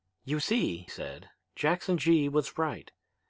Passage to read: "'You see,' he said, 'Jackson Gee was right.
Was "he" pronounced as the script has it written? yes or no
no